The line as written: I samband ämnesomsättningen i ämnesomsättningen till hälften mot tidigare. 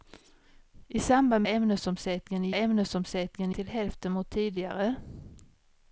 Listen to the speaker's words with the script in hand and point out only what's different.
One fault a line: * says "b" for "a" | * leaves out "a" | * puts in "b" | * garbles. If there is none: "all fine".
all fine